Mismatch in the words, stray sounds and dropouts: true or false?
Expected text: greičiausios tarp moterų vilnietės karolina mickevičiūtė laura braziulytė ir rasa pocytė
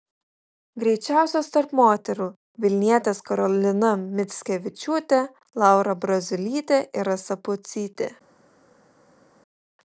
false